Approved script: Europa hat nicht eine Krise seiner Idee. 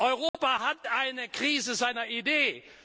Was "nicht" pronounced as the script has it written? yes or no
no